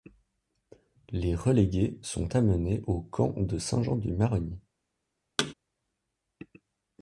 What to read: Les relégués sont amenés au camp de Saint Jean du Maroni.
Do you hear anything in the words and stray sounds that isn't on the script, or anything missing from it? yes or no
yes